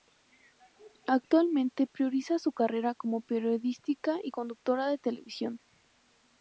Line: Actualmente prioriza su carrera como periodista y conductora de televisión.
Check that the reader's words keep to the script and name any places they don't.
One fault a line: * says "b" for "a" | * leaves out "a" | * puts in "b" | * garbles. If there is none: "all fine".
all fine